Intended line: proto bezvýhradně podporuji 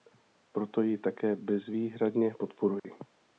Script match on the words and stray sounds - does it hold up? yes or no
no